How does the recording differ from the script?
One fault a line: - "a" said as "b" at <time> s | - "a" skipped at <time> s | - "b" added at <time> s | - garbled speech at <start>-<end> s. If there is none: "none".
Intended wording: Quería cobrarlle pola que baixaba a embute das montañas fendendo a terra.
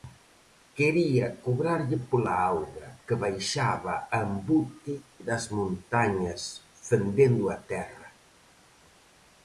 - "auga" added at 2.5 s